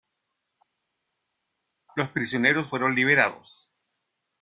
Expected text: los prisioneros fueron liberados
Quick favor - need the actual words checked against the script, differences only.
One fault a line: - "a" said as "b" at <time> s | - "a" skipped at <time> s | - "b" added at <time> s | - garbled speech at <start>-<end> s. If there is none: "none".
none